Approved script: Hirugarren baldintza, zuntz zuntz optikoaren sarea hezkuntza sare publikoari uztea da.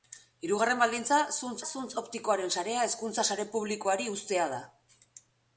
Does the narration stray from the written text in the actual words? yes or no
no